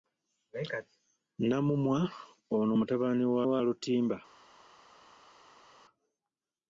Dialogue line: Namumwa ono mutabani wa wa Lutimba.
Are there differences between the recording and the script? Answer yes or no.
no